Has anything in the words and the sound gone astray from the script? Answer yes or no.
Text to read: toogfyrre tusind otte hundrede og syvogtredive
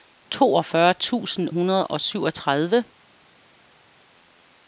yes